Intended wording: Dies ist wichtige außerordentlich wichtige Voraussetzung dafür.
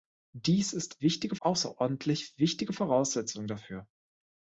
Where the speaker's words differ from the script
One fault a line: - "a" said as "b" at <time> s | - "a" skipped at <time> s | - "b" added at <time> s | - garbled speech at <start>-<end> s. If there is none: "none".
none